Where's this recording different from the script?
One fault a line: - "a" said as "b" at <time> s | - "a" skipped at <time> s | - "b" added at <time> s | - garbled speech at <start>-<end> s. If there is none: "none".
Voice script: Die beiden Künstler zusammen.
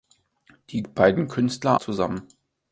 none